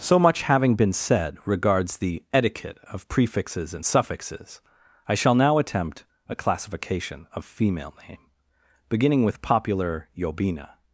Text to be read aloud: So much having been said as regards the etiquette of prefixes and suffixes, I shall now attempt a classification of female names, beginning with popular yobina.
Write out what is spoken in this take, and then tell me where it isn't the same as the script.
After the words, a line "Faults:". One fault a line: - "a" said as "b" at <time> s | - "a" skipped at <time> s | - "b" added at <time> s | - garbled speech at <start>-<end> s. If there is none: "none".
So much having been said regards the etiquette of prefixes and suffixes, I shall now attempt a classification of female name, beginning with popular yobina.
Faults:
- "as" skipped at 1.4 s
- "names" said as "name" at 8.1 s